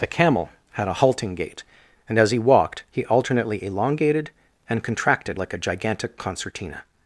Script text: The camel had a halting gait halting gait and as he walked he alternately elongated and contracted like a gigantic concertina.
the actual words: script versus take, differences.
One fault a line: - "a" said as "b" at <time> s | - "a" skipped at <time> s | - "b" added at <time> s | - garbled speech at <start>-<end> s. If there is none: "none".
- "halting gait" skipped at 1.6 s